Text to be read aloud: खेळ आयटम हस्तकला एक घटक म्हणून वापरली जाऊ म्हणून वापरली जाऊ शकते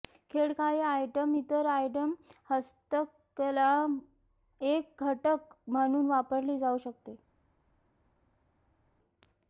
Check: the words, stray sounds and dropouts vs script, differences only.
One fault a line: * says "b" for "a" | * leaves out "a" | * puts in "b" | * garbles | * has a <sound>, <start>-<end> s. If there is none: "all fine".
* puts in "काही"
* puts in "इतर आयटम"
* leaves out "म्हणून वापरली जाऊ"